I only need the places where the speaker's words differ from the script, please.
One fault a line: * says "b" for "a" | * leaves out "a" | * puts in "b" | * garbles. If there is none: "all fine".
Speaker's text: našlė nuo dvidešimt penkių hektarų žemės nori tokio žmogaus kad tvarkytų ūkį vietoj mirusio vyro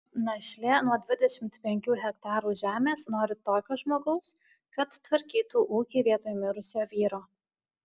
all fine